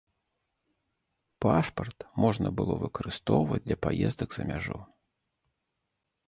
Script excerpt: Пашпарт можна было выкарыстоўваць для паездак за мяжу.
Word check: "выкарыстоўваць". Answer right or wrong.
right